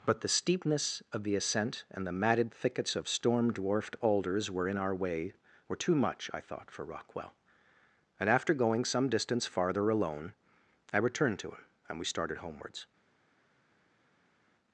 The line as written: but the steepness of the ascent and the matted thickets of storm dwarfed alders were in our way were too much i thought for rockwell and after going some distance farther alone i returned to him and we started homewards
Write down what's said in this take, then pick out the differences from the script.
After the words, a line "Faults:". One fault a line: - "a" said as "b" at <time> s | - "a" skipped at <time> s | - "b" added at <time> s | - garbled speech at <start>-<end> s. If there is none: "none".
but the steepness of the ascent and the matted thickets of storm dwarfed alders were in our way were too much i thought for rockwell and after going some distance farther alone i returned to him and we started homewards
Faults:
none